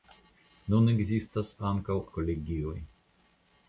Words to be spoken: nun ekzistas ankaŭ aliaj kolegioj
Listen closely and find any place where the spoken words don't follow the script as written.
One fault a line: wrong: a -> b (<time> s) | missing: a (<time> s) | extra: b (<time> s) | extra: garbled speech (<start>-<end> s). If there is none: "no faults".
missing: aliaj (2.0 s)